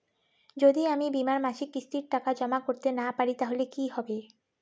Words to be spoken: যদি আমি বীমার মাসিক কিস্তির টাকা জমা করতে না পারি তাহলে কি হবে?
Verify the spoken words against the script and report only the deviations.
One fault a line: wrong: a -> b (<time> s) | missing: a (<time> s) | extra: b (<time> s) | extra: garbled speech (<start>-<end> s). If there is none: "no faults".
no faults